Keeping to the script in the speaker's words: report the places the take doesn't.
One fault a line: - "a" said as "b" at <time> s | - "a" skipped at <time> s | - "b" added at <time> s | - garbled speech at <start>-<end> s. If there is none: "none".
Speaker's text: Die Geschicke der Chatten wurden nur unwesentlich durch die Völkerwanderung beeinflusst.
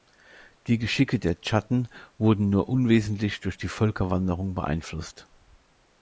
none